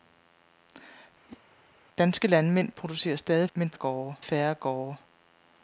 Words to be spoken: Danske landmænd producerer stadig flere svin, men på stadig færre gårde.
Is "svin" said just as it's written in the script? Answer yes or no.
no